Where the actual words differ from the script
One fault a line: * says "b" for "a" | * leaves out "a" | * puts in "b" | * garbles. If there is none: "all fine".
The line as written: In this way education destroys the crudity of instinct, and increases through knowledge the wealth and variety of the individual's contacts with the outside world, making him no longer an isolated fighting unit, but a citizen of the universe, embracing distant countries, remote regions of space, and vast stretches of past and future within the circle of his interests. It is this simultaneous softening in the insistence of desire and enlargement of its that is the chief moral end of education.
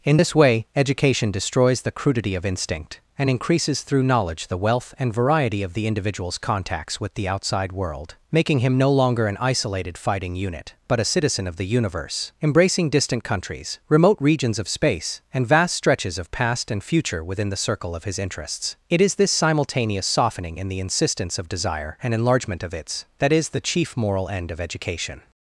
all fine